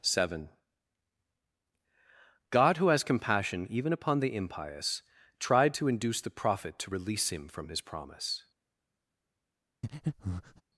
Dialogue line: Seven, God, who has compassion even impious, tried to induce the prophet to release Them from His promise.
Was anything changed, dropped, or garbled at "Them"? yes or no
yes